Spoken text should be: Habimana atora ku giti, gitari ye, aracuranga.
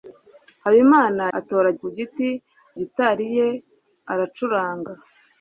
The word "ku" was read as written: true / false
true